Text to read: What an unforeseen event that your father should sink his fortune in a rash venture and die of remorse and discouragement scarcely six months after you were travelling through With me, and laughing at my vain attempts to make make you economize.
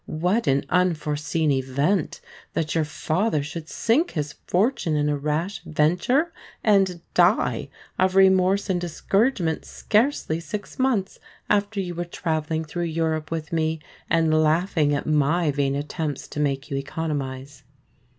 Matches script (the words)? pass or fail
fail